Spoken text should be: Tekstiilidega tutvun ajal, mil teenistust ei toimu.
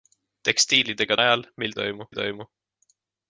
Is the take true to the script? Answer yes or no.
no